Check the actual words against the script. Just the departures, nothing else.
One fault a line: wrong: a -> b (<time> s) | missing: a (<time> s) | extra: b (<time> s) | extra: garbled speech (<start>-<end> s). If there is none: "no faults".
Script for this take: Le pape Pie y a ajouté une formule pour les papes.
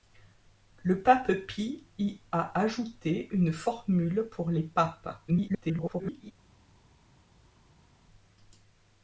extra: garbled speech (5.3-6.3 s)